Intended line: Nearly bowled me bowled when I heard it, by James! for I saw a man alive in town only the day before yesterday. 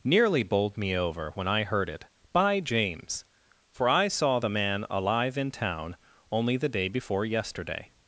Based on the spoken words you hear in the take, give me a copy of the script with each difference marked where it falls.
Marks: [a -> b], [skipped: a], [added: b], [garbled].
Nearly bowled me [bowled -> over] when I heard it, by James! for I saw [a -> the] man alive in town only the day before yesterday.